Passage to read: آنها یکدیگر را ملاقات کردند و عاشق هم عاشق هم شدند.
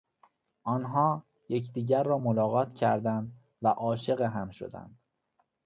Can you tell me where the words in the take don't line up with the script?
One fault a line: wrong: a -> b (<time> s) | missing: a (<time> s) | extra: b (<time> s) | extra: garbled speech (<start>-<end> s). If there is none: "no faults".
missing: عاشق هم (4.5 s)